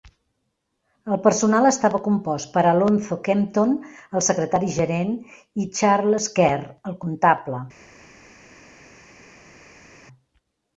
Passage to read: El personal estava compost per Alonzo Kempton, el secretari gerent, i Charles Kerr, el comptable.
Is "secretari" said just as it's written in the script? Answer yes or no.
yes